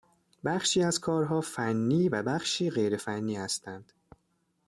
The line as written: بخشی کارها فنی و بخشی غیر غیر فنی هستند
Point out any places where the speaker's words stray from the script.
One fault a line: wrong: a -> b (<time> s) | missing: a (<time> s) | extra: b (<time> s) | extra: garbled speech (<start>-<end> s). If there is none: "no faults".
extra: از (0.8 s)
missing: غیر (3.0 s)